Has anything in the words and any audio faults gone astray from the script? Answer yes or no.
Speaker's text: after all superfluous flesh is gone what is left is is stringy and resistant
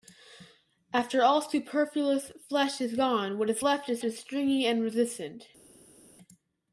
no